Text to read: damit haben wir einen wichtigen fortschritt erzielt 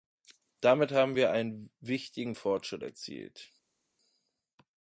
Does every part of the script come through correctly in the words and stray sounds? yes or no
yes